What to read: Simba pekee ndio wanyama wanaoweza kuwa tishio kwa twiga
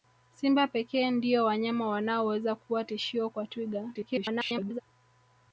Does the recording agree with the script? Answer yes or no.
no